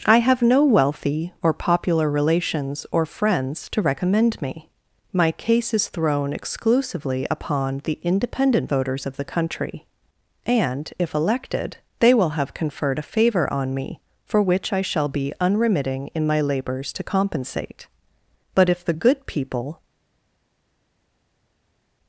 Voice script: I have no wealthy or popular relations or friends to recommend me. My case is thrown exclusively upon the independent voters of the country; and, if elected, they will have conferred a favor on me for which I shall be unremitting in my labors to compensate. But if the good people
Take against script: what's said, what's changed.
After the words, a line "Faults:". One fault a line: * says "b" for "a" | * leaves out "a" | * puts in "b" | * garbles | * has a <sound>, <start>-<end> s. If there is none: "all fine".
I have no wealthy or popular relations or friends to recommend me. My case is thrown exclusively upon the independent voters of the country; and, if elected, they will have conferred a favor on me for which I shall be unremitting in my labors to compensate. But if the good people
Faults:
all fine